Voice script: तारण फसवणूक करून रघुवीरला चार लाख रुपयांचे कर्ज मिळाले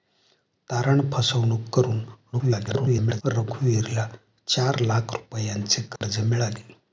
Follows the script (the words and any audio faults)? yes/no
no